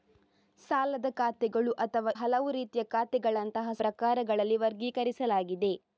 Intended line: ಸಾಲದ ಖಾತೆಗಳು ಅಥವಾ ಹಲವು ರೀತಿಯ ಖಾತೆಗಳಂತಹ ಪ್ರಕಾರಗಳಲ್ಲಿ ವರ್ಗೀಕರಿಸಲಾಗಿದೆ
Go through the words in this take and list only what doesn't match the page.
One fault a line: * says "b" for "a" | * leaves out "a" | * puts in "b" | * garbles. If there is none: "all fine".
all fine